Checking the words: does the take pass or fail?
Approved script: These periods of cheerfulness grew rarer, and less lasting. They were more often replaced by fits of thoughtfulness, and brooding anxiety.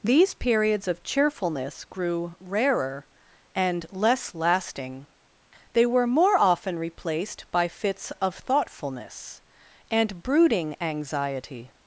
pass